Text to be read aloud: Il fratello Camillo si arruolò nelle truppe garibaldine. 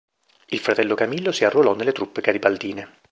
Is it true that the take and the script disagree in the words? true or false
false